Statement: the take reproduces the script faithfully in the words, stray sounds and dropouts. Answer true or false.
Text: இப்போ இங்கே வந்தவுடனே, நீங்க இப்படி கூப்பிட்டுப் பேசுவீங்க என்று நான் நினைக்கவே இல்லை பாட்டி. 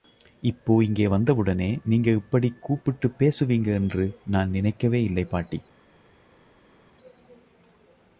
true